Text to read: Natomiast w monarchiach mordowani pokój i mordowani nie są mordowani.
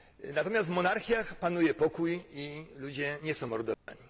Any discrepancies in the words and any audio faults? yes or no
yes